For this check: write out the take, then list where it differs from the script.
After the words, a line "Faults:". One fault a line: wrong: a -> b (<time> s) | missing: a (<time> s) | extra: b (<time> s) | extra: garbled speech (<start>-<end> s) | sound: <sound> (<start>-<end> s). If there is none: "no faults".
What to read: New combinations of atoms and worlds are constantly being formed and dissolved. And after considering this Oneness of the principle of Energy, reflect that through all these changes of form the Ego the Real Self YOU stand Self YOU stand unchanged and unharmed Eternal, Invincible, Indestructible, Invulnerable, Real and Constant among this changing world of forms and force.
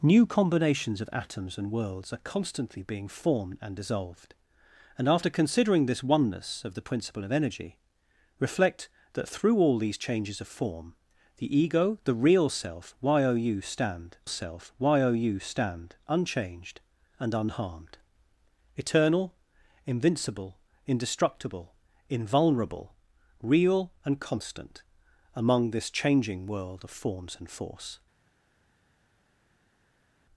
New combinations of atoms and worlds are constantly being formed and dissolved. And after considering this Oneness of the principle of Energy, reflect that through all these changes of form the Ego the Real Self YOU stand Self YOU stand unchanged and unharmed Eternal, Invincible, Indestructible, Invulnerable, Real and Constant among this changing world of forms and force.
Faults:
no faults